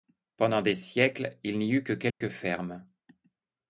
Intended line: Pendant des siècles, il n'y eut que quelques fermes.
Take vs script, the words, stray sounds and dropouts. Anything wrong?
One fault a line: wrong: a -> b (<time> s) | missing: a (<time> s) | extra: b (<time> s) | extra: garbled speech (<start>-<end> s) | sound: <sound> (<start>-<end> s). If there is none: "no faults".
sound: dropout (2.1-2.2 s)